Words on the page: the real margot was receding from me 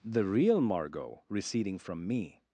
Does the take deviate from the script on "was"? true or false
true